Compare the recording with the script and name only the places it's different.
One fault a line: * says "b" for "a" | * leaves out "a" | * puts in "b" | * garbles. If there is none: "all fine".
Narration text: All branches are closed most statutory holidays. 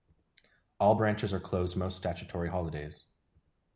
all fine